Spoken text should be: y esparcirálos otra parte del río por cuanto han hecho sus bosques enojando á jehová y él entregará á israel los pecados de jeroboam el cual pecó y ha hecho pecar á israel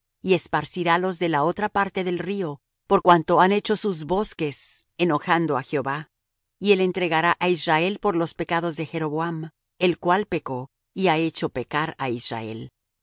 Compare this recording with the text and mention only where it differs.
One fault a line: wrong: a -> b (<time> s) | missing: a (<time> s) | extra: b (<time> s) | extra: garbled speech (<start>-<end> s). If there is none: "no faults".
extra: de la (1.2 s)
extra: por (8.0 s)